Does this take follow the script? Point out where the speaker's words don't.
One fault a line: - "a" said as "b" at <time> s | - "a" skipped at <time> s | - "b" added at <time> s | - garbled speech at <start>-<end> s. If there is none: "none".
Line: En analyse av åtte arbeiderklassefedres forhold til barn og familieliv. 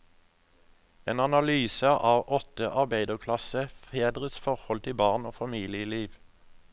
none